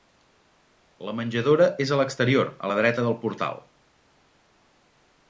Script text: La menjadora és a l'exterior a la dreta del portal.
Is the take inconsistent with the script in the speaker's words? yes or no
no